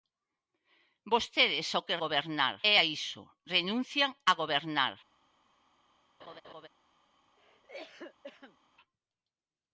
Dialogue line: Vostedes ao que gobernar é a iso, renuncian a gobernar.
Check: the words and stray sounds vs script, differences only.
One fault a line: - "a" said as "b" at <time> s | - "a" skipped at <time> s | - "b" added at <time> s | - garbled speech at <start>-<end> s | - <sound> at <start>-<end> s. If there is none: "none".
- laugh at 6.2-6.7 s
- cough at 7.4-8.6 s